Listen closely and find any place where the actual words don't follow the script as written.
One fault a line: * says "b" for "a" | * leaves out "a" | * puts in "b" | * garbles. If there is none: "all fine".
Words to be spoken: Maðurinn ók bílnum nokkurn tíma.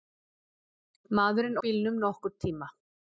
* leaves out "ók"